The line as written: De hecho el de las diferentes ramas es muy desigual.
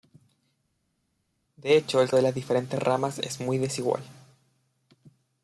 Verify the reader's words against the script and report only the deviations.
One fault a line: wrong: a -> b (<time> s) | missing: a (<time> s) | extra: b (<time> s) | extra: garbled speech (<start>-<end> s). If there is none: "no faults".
no faults